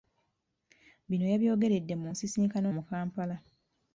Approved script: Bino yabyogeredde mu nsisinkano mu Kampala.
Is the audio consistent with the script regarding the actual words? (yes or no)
yes